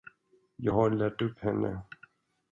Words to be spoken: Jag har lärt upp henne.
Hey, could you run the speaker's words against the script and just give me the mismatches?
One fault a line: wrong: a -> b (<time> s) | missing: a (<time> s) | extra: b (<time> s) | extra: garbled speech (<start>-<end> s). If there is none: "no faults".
no faults